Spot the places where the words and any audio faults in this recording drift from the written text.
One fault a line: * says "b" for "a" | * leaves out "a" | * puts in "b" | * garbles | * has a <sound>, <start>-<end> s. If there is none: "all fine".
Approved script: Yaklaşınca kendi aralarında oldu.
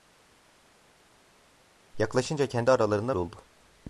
all fine